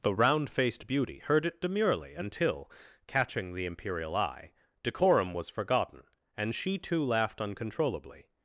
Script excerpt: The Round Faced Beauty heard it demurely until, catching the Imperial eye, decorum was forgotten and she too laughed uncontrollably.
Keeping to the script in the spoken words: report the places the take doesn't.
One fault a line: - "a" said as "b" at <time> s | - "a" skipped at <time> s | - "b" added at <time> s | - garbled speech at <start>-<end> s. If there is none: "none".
none